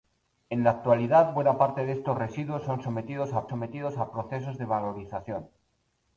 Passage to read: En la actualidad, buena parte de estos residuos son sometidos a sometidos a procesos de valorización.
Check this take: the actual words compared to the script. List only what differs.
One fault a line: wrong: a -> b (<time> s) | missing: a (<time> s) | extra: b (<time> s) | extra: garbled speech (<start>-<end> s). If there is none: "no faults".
no faults